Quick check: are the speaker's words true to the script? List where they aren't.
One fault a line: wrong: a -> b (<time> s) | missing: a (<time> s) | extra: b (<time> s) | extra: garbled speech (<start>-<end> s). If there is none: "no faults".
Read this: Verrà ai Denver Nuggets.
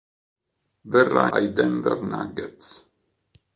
no faults